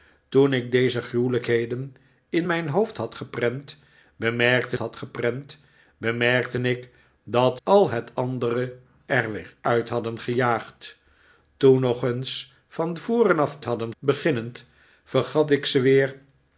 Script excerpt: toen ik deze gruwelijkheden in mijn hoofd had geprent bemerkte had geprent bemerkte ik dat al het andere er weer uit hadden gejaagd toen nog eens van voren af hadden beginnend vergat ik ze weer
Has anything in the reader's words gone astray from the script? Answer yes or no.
no